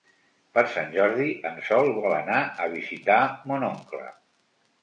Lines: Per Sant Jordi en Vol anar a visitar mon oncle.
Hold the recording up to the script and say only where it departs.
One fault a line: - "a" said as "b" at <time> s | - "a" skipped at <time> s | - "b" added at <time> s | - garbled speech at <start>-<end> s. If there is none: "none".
- "Sol" added at 1.7 s